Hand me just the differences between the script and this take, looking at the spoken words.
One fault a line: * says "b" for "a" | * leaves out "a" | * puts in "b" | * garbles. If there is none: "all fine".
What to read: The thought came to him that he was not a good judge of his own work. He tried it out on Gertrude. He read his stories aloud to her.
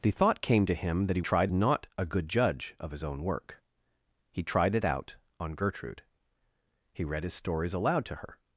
* says "tried" for "was"